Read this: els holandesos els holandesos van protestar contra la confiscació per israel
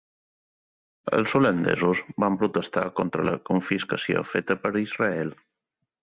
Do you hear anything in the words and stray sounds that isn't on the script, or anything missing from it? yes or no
yes